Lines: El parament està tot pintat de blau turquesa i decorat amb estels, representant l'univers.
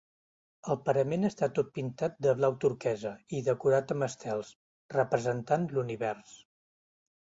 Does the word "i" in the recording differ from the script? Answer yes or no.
no